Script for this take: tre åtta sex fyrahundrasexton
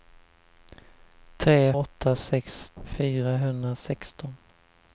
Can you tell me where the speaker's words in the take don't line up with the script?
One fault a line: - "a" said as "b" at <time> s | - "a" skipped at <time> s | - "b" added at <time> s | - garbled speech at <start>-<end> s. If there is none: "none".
none